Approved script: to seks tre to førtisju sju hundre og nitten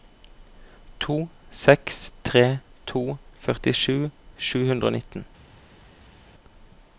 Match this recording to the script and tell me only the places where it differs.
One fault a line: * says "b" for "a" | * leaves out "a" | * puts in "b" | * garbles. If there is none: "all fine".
all fine